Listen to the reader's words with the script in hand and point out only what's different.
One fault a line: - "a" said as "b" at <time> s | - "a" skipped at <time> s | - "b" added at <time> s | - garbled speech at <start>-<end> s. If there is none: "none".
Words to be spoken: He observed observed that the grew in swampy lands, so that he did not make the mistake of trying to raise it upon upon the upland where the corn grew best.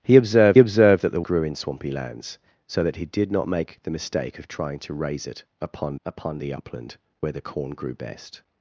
none